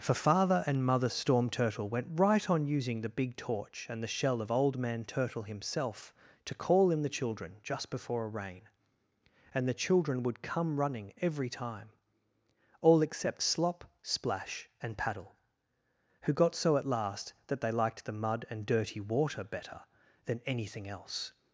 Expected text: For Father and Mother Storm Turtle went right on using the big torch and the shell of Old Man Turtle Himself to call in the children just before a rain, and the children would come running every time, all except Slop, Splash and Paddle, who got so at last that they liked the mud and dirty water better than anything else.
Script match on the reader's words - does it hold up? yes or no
yes